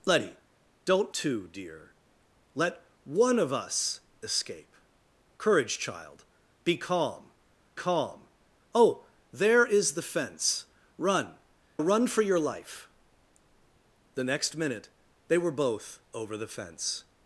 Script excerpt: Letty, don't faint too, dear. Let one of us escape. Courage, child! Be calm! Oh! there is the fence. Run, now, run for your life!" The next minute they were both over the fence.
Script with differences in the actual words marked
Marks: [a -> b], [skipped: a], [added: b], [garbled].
Letty, don't [skipped: faint] too, dear. Let one of us escape. Courage, child! Be calm! [added: calm] Oh! there is the fence. Run, [skipped: now,] run for your life!" The next minute they were both over the fence.